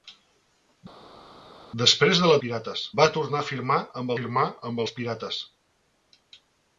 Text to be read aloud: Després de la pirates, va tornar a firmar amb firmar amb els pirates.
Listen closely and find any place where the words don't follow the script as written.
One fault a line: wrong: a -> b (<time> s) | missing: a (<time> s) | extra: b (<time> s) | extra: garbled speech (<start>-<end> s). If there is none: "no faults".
no faults